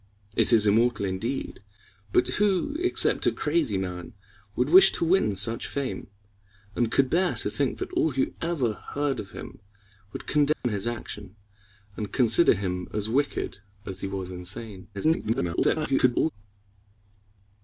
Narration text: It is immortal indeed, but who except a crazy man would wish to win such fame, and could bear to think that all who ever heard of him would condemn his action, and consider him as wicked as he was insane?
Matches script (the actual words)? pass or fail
fail